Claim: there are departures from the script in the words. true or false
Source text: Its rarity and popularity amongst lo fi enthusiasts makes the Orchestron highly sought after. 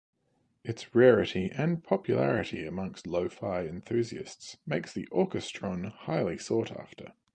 false